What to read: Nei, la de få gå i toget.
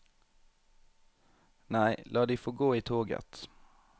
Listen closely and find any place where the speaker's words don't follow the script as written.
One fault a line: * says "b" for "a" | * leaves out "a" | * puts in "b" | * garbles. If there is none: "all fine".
all fine